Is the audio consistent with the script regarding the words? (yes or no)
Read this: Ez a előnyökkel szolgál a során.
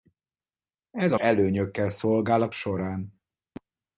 yes